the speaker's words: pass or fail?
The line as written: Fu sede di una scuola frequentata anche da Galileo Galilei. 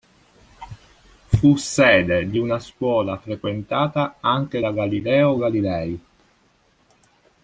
pass